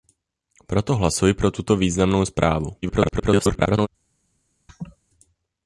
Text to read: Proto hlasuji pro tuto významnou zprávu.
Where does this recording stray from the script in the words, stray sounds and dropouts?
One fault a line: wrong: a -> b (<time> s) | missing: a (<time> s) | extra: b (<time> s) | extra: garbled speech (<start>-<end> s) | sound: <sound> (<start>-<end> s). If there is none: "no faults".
extra: garbled speech (2.8-3.9 s)
sound: laugh (4.7-5.0 s)